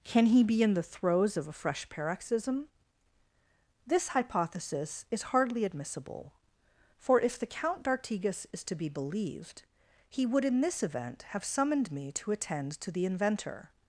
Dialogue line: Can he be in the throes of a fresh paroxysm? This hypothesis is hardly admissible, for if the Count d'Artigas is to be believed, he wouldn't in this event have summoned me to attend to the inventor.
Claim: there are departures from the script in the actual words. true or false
true